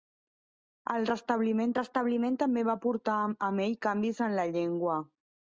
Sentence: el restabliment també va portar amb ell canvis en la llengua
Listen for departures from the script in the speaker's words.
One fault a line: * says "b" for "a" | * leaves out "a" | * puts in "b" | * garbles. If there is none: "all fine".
* puts in "restabliment"